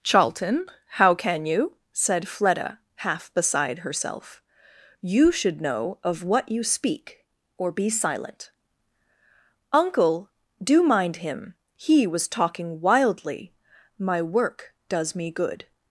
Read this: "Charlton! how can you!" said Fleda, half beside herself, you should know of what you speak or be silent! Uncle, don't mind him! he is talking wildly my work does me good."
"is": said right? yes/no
no